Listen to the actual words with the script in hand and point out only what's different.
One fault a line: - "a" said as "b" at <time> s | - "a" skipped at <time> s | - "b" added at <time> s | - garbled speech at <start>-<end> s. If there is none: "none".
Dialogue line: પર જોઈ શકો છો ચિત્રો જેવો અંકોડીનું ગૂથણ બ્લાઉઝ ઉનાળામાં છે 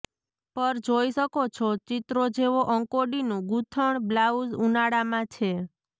none